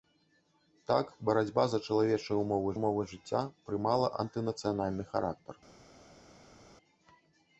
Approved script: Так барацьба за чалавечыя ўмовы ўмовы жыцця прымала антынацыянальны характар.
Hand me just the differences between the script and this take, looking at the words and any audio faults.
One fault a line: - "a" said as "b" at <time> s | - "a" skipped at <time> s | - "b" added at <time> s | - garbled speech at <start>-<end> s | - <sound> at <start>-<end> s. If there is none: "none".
none